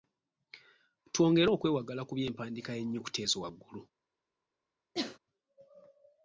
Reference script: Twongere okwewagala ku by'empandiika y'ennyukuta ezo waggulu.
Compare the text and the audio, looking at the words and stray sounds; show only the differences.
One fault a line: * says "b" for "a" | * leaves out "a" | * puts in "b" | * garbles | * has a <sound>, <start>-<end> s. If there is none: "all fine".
* has a sneeze, 4.9-5.2 s